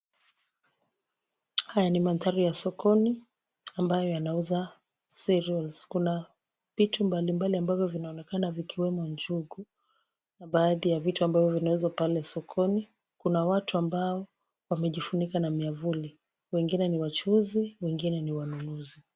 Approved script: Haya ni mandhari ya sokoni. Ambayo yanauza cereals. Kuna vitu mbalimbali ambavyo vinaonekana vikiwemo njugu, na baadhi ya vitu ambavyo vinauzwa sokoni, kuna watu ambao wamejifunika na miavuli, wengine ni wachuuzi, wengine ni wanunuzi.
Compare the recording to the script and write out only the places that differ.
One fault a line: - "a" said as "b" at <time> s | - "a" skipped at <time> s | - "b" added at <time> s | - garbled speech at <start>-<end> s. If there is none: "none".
- "pale" added at 11.9 s